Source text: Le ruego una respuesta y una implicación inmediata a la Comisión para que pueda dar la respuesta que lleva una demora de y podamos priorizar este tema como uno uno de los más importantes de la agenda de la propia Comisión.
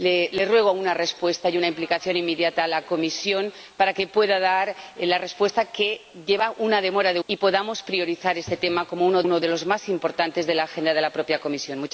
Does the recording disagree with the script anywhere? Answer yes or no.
no